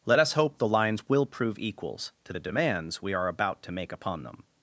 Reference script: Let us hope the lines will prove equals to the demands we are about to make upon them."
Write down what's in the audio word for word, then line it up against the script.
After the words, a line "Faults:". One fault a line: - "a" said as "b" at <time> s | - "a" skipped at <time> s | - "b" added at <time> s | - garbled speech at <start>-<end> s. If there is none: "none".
Let us hope the lines will prove equals to the demands we are about to make upon them."
Faults:
none